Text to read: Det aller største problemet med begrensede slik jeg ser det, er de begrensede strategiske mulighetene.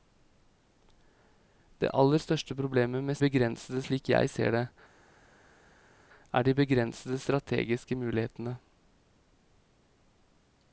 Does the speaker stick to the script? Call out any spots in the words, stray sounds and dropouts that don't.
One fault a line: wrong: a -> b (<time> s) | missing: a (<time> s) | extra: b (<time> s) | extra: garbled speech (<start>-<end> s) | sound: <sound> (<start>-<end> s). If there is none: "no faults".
no faults